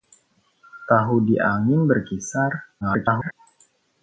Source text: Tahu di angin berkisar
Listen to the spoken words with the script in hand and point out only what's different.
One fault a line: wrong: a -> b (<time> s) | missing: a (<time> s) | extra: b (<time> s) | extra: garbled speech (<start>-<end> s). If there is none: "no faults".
extra: garbled speech (2.8-3.3 s)